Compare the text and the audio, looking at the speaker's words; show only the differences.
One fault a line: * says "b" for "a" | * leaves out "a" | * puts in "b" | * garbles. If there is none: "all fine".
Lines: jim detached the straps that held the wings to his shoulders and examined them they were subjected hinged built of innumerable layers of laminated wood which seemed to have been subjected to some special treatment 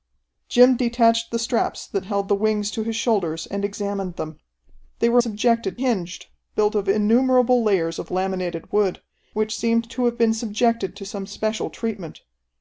all fine